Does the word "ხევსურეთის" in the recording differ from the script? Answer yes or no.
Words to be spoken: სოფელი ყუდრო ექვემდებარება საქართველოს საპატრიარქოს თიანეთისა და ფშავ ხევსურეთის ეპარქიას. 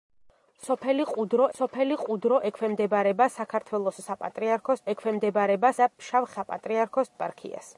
yes